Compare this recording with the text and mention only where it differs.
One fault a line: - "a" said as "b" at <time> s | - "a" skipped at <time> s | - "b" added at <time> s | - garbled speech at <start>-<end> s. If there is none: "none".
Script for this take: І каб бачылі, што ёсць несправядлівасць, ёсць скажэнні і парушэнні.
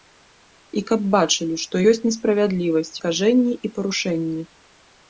- "ёсць" skipped at 2.9 s